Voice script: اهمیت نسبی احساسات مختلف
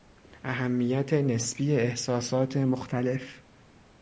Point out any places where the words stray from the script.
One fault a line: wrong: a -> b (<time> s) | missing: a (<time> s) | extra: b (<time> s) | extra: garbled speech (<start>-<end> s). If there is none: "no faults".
no faults